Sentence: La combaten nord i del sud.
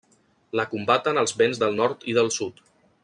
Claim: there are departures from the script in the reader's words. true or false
true